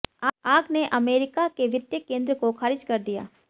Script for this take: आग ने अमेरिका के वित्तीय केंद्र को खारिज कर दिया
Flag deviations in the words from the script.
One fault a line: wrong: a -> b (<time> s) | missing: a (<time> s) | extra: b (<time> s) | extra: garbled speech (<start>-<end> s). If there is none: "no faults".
no faults